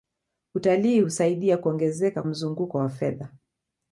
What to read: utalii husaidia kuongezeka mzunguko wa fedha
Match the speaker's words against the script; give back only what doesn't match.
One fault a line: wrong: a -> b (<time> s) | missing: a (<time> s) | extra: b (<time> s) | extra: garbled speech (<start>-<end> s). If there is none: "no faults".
no faults